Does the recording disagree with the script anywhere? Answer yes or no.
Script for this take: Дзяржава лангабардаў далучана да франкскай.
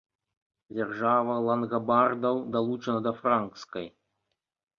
no